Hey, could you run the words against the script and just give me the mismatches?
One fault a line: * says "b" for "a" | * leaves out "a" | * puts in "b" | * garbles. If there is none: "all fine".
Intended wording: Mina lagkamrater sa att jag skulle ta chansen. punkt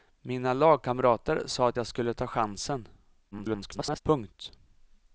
* garbles